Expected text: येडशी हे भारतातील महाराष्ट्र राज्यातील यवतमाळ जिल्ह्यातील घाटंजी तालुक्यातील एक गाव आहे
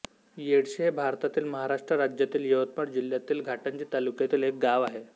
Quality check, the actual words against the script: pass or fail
pass